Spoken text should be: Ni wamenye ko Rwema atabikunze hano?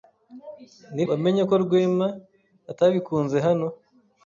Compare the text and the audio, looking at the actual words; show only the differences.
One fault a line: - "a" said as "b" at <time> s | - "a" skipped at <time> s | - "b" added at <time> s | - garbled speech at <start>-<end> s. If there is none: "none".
none